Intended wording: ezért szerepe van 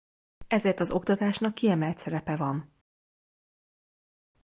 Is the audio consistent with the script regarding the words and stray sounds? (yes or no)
no